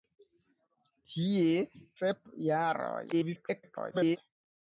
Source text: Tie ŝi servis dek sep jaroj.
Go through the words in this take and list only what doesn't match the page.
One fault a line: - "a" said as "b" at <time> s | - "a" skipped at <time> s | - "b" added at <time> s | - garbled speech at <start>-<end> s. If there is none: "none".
- "ŝi servis dek" skipped at 1.6 s
- garbled speech at 3.1-4.2 s